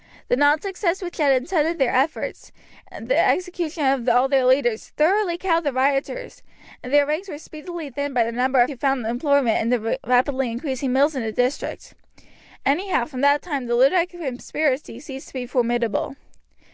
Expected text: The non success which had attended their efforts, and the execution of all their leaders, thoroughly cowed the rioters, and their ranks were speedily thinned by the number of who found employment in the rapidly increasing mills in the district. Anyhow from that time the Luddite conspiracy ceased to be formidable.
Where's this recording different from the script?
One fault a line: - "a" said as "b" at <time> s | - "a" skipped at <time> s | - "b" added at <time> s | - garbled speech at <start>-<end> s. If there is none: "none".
none